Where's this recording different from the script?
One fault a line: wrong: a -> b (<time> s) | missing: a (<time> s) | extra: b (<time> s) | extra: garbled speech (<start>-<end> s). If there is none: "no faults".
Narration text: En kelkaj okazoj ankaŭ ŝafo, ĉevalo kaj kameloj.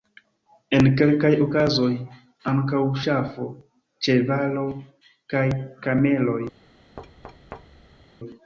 no faults